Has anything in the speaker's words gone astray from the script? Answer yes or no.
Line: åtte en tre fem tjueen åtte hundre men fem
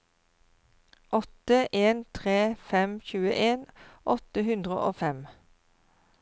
yes